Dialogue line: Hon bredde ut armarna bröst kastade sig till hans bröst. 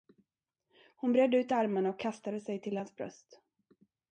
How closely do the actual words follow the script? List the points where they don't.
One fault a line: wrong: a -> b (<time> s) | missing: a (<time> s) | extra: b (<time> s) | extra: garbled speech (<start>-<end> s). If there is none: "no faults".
wrong: bröst -> och (1.9 s)